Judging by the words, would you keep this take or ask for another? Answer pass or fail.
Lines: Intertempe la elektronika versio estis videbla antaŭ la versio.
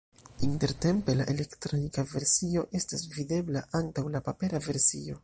fail